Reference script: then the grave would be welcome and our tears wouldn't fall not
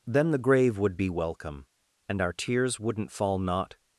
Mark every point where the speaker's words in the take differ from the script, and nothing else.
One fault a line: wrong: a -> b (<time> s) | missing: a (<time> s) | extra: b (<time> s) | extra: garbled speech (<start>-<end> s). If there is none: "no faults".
no faults